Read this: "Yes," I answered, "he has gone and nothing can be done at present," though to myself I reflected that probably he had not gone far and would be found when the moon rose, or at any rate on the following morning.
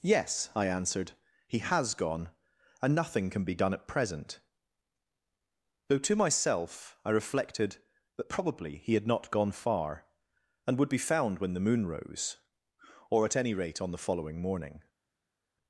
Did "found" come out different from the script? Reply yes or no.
no